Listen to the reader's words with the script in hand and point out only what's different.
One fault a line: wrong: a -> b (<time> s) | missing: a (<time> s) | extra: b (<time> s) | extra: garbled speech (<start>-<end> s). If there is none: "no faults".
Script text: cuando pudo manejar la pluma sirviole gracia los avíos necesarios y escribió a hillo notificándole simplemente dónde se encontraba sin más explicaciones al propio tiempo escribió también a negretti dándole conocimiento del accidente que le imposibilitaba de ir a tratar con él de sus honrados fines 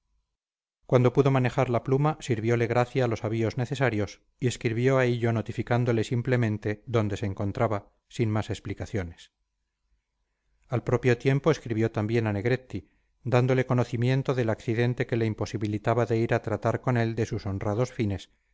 no faults